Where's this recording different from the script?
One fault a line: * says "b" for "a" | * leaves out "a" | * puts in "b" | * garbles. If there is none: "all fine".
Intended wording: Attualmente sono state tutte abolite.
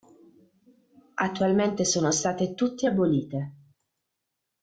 all fine